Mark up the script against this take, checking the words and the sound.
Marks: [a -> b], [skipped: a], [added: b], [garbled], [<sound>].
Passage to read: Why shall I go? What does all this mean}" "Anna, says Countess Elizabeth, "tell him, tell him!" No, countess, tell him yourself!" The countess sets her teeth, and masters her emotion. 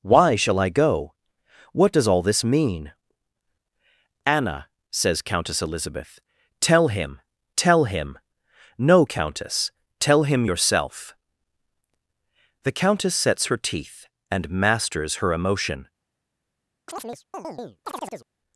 Why shall I go? What does all this mean}" "Anna, says Countess Elizabeth, "tell him, tell him!" No, countess, tell him yourself!" The countess sets her teeth, and masters her emotion. [chirp]